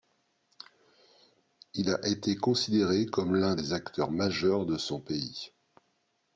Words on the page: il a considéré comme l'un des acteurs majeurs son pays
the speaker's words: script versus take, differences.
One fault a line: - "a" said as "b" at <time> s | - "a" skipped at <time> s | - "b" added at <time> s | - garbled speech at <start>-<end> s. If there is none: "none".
- "été" added at 2.1 s
- "de" added at 4.7 s